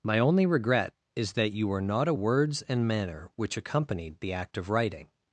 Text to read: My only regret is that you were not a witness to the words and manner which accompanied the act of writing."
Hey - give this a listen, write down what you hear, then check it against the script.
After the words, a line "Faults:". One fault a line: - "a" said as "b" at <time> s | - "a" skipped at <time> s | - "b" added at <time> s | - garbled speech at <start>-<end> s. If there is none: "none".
My only regret is that you were not a words and manner which accompanied the act of writing."
Faults:
- "witness to the" skipped at 2.1 s